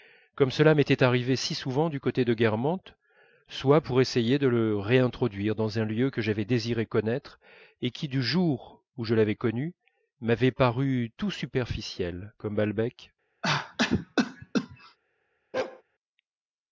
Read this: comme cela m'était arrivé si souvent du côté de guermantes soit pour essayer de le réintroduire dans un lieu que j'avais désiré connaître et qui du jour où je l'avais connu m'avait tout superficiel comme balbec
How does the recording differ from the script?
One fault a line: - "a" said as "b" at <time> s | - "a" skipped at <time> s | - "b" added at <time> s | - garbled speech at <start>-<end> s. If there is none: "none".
- "paru" added at 10.5 s